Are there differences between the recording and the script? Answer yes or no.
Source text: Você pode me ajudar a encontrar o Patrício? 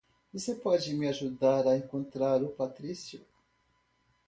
no